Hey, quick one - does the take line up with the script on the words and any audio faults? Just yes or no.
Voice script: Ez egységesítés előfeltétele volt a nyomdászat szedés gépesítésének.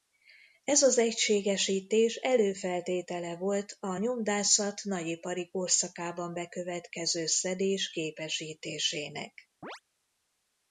no